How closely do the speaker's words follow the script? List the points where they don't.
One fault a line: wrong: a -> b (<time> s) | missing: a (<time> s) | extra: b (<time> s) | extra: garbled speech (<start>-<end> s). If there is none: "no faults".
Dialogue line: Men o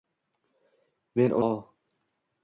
no faults